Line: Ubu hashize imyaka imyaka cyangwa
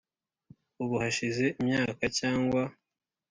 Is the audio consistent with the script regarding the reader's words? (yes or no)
no